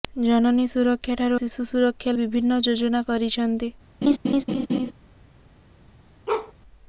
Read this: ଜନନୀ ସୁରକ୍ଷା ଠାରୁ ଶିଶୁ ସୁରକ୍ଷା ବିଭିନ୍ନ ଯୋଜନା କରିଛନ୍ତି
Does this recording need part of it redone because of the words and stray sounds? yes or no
yes